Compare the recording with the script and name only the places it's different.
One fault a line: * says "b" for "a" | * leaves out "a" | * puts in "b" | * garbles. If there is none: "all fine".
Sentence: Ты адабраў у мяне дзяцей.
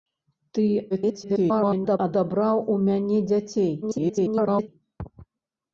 * garbles
* garbles